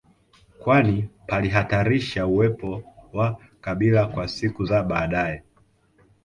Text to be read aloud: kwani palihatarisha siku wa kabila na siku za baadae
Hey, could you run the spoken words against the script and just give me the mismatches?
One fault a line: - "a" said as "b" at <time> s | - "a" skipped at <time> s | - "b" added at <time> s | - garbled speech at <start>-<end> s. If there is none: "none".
- "siku" said as "uwepo" at 2.3 s
- "na" said as "kwa" at 4.1 s